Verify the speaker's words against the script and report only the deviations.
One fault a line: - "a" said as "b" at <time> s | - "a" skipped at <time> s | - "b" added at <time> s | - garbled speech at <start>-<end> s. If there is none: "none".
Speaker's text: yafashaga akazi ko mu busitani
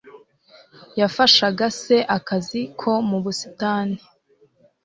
- "se" added at 1.8 s